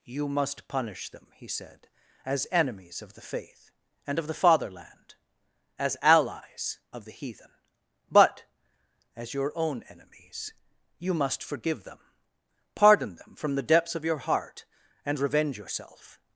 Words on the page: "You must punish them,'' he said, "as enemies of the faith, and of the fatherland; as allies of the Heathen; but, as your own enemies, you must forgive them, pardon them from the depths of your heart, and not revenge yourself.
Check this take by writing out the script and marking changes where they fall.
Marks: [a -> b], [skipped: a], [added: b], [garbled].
"You must punish them,'' he said, "as enemies of the faith, and of the fatherland; as allies of the Heathen; but, as your own enemies, you must forgive them, pardon them from the depths of your heart, and [skipped: not] revenge yourself.